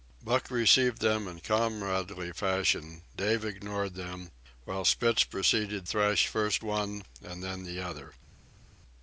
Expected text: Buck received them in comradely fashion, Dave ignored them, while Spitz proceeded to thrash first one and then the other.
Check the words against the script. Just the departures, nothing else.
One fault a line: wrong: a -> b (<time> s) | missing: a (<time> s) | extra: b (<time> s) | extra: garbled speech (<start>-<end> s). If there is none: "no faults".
missing: to (5.9 s)